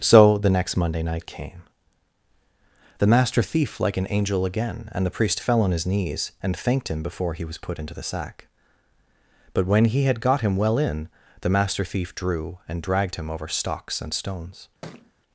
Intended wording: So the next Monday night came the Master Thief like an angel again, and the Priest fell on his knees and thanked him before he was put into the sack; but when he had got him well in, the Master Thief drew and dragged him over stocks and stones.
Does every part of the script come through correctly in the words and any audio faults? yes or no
no